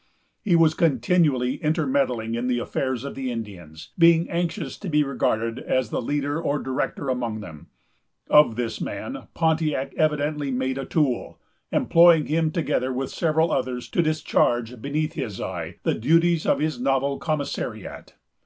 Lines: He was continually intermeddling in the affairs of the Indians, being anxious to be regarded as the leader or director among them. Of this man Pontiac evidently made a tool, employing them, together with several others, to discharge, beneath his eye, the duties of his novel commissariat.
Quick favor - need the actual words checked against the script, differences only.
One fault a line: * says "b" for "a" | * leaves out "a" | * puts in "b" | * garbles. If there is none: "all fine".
* says "him" for "them"